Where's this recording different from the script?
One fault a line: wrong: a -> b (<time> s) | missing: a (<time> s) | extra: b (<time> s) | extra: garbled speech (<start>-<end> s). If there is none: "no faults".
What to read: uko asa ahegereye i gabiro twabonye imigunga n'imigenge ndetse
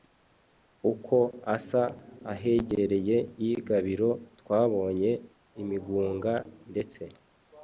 missing: n'imigenge (6.3 s)